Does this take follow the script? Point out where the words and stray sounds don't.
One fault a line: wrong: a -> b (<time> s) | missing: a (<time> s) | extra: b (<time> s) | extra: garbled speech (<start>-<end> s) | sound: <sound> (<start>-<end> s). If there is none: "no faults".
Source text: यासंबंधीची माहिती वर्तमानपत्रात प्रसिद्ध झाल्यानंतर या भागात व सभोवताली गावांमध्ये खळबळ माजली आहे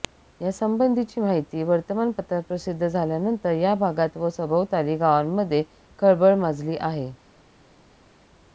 no faults